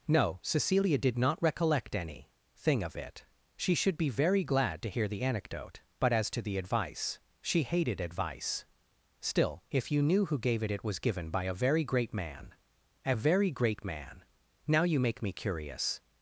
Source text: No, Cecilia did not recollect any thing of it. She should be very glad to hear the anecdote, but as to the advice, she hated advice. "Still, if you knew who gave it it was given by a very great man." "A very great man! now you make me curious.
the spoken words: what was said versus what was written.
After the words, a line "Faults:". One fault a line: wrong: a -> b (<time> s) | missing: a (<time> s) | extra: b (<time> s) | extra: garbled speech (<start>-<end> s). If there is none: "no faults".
No, Cecilia did not recollect any thing of it. She should be very glad to hear the anecdote, but as to the advice, she hated advice. "Still, if you knew who gave it it was given by a very great man." "A very great man! now you make me curious.
Faults:
no faults